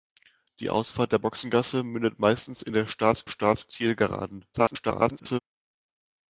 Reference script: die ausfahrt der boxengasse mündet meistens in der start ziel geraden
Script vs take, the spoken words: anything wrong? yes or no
yes